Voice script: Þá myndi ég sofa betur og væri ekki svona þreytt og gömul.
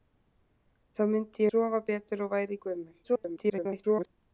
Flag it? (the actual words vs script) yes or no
yes